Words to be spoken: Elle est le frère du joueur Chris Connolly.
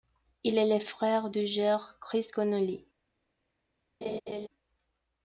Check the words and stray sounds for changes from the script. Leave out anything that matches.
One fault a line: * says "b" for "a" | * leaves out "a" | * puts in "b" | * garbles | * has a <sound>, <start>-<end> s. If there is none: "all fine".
* says "Il" for "Elle"
* has a laugh, 4.0-4.5 s